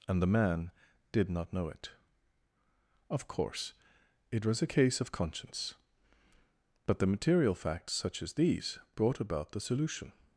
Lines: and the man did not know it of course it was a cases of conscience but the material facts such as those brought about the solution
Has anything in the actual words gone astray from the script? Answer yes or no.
yes